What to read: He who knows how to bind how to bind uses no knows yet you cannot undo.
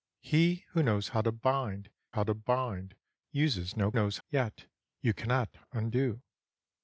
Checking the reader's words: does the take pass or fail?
pass